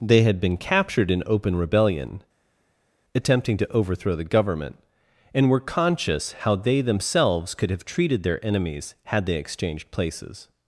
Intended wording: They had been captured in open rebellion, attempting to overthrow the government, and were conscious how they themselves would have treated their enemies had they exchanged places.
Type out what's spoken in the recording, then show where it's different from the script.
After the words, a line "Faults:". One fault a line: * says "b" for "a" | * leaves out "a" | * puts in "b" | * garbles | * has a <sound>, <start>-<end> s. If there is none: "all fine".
They had been captured in open rebellion, attempting to overthrow the government, and were conscious how they themselves could have treated their enemies had they exchanged places.
Faults:
* says "could" for "would"